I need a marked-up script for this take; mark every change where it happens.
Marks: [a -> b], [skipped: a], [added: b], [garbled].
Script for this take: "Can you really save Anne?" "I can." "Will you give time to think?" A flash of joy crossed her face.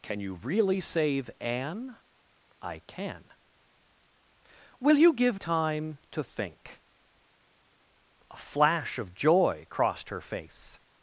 "Can you really save Anne?" "I can." "Will you give time to think?" A flash of joy crossed her face.